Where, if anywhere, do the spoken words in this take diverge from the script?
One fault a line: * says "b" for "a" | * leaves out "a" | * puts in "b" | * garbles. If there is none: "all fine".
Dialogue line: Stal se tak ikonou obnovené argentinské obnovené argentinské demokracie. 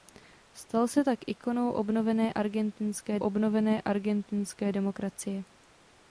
all fine